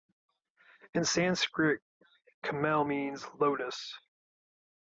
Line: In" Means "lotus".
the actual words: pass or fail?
fail